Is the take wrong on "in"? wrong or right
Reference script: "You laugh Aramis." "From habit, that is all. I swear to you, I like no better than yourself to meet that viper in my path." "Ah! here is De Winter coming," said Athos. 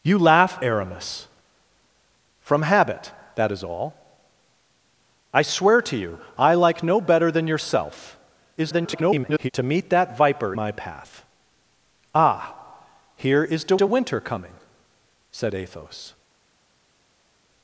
wrong